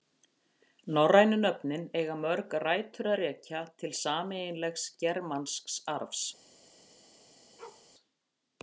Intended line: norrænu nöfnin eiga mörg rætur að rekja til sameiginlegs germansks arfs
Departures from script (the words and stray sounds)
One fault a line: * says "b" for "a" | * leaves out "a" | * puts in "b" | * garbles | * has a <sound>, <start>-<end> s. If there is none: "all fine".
* has a bark, 7.6-7.9 s